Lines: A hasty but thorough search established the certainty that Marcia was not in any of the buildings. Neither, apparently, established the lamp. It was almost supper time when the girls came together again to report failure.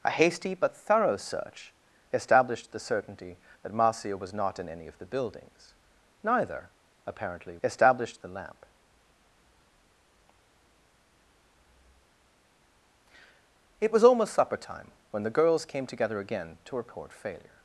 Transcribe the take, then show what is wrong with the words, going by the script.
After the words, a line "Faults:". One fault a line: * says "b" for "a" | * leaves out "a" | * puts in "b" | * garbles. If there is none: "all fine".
A hasty but thorough search established the certainty that Marcia was not in any of the buildings. Neither, apparently, established the lamp. It was almost supper time when the girls came together again to report failure.
Faults:
all fine